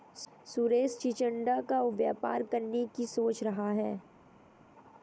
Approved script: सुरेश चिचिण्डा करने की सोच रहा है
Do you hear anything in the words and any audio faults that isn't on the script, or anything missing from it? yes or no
yes